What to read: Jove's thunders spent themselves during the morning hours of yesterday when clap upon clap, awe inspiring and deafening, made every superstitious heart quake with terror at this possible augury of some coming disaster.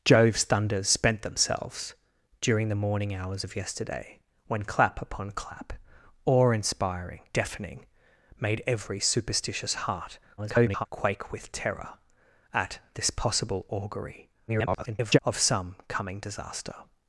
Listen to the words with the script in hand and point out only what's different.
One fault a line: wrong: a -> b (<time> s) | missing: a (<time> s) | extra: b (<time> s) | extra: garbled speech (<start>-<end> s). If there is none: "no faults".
missing: and (7.2 s)
extra: garbled speech (10.4-10.9 s)
extra: garbled speech (14.5-15.2 s)